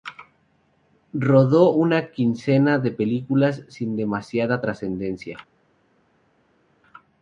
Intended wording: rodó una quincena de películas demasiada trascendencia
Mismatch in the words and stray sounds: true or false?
true